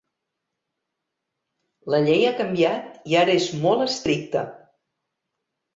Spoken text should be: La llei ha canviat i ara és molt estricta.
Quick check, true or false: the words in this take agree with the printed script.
true